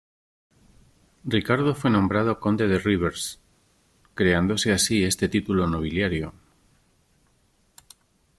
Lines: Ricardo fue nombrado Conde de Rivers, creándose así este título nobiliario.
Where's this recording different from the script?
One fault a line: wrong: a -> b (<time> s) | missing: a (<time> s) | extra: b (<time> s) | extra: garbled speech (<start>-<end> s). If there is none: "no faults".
no faults